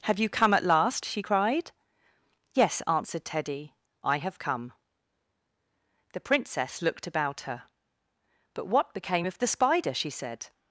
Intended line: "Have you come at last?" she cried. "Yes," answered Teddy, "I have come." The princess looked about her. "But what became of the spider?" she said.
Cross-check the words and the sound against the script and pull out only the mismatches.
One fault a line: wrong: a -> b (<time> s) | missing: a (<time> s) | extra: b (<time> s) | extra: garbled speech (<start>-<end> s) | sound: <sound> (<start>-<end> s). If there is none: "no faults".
no faults